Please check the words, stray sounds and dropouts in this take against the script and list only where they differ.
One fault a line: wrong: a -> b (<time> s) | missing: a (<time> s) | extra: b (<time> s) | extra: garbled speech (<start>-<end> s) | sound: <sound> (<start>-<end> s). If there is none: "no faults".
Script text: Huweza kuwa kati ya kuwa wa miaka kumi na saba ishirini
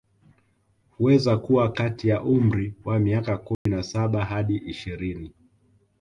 wrong: kuwa -> umri (2.2 s)
sound: dropout (3.5-3.7 s)
extra: hadi (4.3 s)